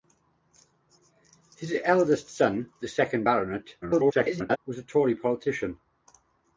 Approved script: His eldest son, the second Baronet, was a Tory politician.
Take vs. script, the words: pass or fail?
fail